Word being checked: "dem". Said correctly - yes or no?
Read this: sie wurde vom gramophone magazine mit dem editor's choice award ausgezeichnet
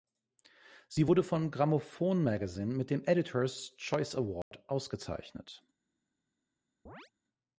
yes